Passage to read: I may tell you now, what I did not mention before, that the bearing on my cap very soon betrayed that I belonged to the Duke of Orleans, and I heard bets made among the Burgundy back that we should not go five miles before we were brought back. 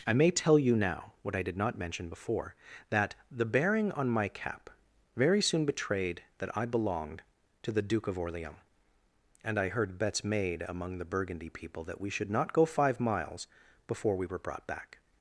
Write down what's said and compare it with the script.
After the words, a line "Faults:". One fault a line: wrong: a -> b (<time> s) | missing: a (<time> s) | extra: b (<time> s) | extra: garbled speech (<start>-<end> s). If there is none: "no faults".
I may tell you now, what I did not mention before, that the bearing on my cap very soon betrayed that I belonged to the Duke of Orleans, and I heard bets made among the Burgundy people that we should not go five miles before we were brought back.
Faults:
wrong: back -> people (11.5 s)